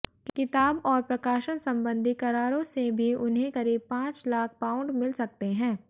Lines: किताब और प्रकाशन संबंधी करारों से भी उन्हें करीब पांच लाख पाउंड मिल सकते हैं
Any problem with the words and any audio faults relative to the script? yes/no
no